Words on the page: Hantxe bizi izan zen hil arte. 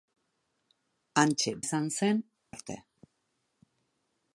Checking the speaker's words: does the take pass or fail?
fail